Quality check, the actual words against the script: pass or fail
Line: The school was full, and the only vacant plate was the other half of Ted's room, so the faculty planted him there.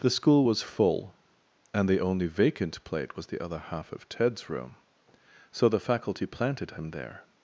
pass